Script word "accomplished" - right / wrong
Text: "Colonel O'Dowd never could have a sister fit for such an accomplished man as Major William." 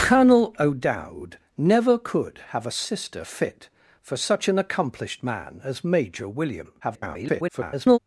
right